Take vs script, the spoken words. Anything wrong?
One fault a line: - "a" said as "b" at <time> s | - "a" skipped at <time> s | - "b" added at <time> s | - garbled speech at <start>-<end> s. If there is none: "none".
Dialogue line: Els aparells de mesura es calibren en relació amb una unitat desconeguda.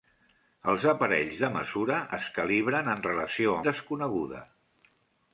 - "amb una unitat" skipped at 3.6 s